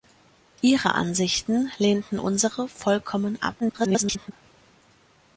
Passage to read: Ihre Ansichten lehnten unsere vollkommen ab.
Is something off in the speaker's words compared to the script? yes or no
yes